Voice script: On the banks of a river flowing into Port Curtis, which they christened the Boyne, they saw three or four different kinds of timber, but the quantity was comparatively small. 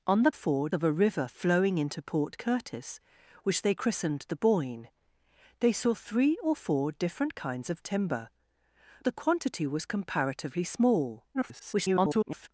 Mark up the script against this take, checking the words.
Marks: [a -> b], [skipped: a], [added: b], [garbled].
On the [banks -> four] of a river flowing into Port Curtis, which they christened the Boyne, they saw three or four different kinds of timber, [skipped: but] the quantity was comparatively small. [garbled]